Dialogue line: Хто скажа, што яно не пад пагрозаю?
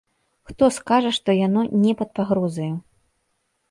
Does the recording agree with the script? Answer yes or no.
yes